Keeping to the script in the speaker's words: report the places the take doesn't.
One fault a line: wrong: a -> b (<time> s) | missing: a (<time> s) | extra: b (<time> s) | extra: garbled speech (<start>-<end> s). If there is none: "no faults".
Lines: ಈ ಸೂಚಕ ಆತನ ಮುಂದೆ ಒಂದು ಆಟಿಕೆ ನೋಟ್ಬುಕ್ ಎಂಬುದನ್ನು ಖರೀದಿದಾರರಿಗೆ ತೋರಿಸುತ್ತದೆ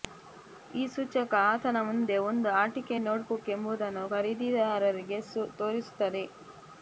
no faults